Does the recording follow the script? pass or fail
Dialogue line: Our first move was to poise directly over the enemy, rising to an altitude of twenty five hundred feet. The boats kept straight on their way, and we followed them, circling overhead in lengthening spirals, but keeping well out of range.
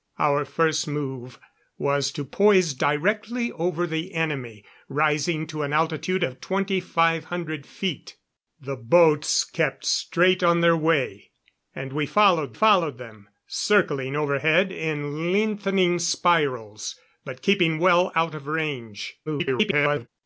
fail